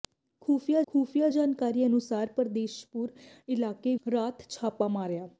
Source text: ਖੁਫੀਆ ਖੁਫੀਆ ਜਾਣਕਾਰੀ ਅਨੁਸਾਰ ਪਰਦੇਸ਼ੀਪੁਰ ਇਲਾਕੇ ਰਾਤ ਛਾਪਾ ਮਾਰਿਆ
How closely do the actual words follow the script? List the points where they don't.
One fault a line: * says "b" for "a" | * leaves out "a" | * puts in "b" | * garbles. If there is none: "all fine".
all fine